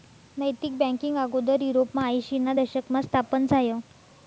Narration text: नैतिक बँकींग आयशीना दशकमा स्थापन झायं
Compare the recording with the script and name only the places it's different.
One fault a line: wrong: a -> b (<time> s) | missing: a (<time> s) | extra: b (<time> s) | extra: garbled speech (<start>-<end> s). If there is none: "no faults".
extra: आगोदर युरोपमा (1.2 s)